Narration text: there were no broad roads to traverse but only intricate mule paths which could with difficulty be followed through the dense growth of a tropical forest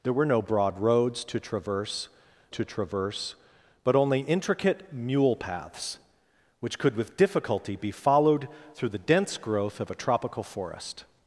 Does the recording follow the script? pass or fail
fail